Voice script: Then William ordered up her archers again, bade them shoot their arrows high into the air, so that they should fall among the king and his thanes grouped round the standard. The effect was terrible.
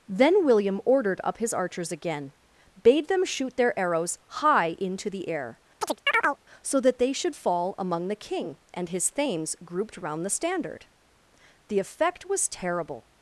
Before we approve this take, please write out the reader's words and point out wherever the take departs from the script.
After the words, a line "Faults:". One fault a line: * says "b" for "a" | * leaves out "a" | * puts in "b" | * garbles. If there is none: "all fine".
Then William ordered up his archers again, bade them shoot their arrows high into the air, so that they should fall among the king and his thanes grouped round the standard. The effect was terrible.
Faults:
* says "his" for "her"